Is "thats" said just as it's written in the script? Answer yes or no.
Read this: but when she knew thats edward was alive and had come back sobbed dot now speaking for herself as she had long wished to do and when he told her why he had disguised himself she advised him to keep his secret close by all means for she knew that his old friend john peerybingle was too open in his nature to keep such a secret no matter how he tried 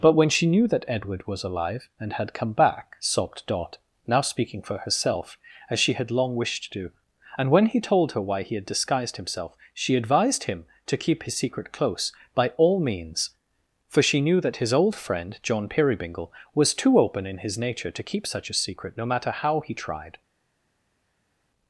no